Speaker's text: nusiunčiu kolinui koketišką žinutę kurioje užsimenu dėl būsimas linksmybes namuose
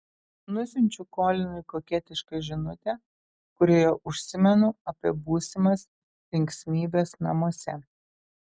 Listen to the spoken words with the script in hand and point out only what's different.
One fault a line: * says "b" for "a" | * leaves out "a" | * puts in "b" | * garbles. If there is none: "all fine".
* says "apie" for "dėl"